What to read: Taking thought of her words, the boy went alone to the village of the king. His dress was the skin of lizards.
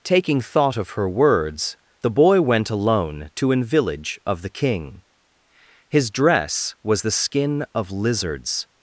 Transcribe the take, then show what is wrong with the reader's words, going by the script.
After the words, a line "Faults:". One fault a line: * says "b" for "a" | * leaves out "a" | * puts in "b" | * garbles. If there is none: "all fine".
Taking thought of her words, the boy went alone to an village of the king. His dress was the skin of lizards.
Faults:
* says "an" for "the"